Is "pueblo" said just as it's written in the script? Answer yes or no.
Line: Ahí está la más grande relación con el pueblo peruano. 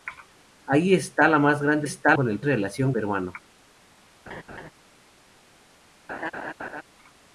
no